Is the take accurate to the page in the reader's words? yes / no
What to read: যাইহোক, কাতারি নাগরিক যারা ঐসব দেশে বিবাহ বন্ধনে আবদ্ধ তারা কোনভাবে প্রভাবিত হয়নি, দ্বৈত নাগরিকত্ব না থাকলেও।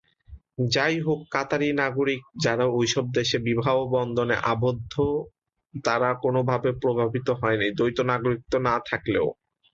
yes